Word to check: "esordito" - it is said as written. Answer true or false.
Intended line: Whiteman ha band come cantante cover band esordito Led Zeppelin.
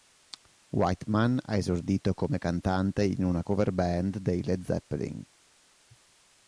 false